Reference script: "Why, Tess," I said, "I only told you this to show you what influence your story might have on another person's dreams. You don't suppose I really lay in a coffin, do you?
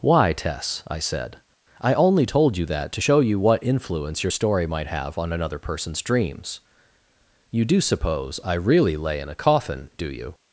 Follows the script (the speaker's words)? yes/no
no